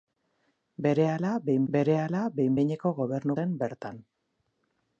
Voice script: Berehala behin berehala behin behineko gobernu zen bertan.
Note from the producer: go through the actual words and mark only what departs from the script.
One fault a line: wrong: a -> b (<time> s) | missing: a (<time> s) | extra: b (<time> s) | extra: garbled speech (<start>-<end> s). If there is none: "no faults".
no faults